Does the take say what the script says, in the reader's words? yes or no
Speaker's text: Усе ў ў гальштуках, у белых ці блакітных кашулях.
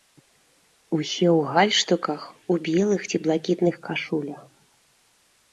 no